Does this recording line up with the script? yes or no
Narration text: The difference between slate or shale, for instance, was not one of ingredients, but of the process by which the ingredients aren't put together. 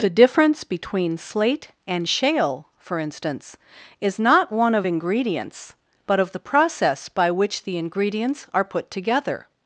no